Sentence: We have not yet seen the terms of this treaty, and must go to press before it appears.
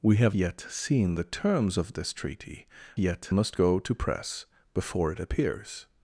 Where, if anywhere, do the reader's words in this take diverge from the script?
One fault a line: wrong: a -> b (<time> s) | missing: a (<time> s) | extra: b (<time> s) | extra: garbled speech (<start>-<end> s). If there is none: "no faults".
missing: not (0.3 s)
wrong: and -> yet (3.0 s)